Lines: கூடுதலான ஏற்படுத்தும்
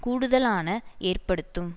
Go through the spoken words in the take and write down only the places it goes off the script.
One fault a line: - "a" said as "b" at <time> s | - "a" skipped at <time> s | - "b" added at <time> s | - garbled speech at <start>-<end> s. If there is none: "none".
none